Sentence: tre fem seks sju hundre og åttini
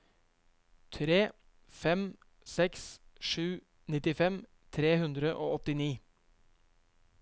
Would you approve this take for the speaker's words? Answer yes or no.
no